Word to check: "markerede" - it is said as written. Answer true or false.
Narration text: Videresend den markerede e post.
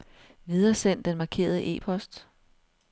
true